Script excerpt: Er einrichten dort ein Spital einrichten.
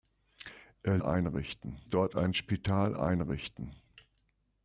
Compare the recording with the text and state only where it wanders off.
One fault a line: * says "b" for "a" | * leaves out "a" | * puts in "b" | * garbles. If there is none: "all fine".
all fine